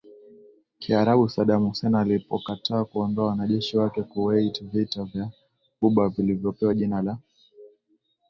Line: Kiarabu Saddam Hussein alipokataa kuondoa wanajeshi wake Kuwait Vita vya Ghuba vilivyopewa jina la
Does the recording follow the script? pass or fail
pass